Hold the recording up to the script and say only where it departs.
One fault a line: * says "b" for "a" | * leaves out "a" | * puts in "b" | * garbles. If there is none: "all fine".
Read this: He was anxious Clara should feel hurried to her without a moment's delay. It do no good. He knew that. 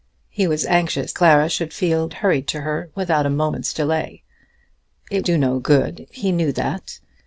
all fine